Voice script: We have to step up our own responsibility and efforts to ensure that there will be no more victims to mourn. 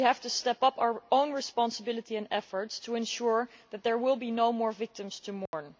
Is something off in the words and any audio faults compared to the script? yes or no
yes